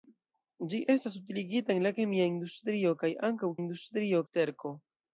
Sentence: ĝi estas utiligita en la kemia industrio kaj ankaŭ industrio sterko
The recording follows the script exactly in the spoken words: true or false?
true